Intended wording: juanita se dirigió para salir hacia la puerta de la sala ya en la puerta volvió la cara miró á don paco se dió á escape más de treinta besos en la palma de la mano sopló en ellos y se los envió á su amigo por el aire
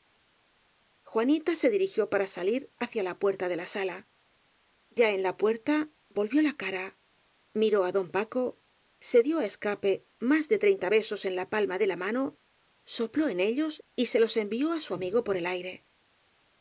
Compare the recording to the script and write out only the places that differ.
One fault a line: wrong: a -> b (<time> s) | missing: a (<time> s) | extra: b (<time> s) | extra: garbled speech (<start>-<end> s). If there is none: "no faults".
no faults